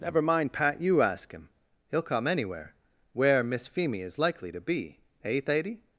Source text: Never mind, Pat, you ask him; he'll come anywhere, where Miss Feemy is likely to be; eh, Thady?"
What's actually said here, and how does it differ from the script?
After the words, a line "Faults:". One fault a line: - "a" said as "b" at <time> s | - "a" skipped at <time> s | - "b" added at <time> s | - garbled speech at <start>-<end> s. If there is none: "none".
Never mind, Pat, you ask him; he'll come anywhere, where Miss Feemy is likely to be; eh, Thady?"
Faults:
none